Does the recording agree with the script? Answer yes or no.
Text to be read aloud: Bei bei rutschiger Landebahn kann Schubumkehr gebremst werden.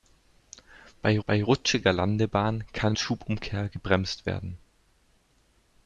yes